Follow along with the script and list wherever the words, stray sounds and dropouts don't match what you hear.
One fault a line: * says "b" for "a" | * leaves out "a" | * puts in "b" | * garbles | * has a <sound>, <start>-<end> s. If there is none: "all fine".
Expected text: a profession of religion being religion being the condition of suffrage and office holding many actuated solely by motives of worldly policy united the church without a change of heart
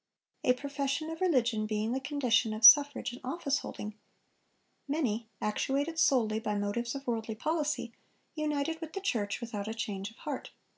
* leaves out "religion being"
* puts in "with"